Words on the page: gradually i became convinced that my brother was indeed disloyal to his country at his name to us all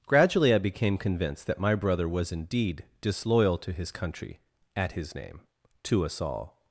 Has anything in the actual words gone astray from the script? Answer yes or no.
no